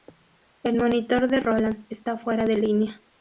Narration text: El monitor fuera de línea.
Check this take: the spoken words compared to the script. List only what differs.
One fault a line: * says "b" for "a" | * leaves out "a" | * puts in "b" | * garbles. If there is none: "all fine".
* puts in "de Roland está"